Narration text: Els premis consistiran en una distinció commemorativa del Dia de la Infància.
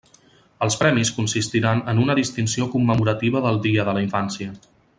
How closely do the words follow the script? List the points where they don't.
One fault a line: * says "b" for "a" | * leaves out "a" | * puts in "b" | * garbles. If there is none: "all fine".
all fine